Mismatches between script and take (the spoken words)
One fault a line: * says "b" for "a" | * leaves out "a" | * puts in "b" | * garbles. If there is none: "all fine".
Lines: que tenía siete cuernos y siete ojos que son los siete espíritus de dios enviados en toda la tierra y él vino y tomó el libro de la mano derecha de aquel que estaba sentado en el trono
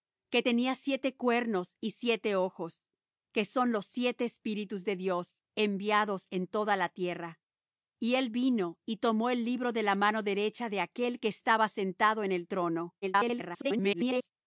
* garbles